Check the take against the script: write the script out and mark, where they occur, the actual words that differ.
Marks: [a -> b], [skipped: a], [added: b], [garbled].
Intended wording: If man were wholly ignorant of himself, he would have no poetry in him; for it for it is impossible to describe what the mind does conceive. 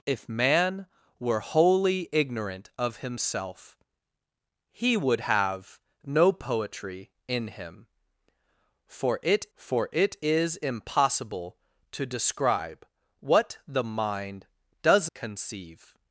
If man were wholly ignorant of himself, he would have no poetry in him; for it for it is impossible to describe what the mind does conceive.